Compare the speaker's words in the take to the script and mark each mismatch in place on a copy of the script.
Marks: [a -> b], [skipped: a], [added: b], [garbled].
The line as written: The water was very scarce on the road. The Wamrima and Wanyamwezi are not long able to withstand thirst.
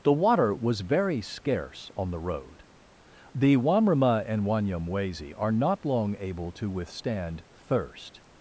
The water was very scarce on the road. The Wamrima and Wanyamwezi are not long able to withstand thirst.